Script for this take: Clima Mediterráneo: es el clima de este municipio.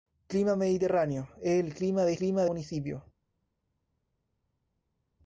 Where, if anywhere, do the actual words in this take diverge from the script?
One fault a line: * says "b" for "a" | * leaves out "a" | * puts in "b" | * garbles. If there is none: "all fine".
* says "clima" for "este"